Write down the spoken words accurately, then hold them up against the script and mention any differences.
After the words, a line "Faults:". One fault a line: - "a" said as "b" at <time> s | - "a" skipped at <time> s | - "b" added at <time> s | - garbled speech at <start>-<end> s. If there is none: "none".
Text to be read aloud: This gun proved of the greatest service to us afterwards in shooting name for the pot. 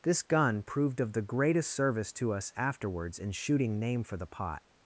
This gun proved of the greatest service to us afterwards in shooting name for the pot.
Faults:
none